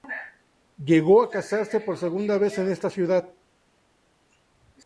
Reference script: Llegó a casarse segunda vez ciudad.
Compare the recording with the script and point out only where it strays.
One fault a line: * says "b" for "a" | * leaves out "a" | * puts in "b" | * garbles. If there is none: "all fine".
* puts in "por"
* puts in "en esta"